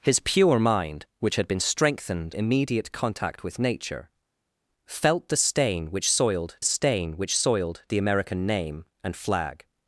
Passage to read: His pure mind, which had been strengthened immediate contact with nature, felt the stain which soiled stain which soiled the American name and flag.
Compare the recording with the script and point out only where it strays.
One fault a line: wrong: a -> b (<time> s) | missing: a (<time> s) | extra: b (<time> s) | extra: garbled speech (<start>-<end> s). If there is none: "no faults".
no faults